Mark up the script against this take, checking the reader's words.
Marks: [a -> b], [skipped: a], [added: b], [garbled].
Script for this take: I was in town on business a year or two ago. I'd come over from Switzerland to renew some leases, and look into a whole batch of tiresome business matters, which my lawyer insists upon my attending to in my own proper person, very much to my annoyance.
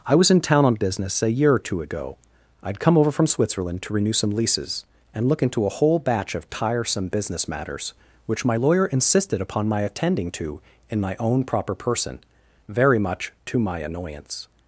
I was in town on business a year or two ago. I'd come over from Switzerland to renew some leases, and look into a whole batch of tiresome business matters, which my lawyer [insists -> insisted] upon my attending to in my own proper person, very much to my annoyance.